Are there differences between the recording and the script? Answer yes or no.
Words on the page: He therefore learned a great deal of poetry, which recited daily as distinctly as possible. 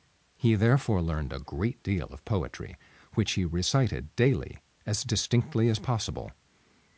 yes